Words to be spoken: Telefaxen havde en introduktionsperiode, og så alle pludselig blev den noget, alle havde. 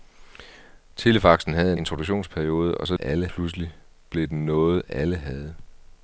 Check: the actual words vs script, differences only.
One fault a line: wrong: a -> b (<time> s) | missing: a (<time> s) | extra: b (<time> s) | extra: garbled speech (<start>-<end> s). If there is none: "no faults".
no faults